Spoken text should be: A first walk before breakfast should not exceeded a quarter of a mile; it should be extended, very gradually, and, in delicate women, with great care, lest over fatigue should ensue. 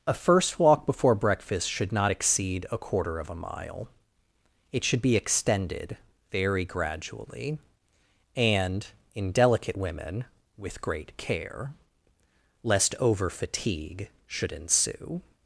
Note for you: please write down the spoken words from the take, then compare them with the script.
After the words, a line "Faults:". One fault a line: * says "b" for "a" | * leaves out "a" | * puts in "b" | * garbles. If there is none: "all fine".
A first walk before breakfast should not exceed a quarter of a mile; it should be extended, very gradually, and, in delicate women, with great care, lest over fatigue should ensue.
Faults:
* says "exceed" for "exceeded"